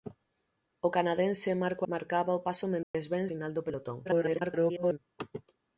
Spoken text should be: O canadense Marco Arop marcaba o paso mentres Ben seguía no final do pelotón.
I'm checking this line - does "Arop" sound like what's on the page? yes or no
no